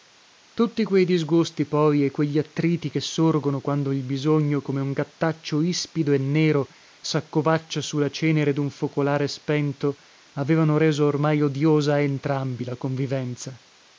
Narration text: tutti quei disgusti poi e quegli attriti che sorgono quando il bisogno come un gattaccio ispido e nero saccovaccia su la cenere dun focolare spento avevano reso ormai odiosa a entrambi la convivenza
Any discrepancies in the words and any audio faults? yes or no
no